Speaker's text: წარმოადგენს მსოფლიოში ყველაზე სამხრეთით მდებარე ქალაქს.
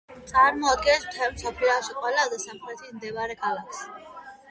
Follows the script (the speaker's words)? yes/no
no